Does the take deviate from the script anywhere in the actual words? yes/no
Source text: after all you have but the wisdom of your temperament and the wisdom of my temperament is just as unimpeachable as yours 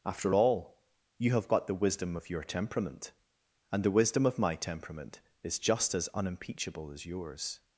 yes